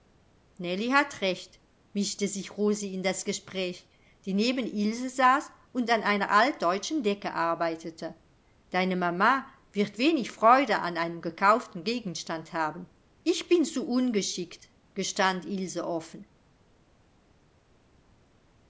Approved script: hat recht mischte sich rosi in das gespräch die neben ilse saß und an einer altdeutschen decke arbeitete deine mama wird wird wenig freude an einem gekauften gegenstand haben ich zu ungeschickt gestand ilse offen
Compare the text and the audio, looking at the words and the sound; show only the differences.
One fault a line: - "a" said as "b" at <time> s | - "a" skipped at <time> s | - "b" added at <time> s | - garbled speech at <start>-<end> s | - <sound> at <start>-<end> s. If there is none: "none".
- "wird" skipped at 10.0 s
- "bin" added at 13.5 s